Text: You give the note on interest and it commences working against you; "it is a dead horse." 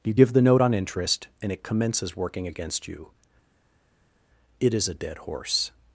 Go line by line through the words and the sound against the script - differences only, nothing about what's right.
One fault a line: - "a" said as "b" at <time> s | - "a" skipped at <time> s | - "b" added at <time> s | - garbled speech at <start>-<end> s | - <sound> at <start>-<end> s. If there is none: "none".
none